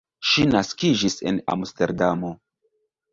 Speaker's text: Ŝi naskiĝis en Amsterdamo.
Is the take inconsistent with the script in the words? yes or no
no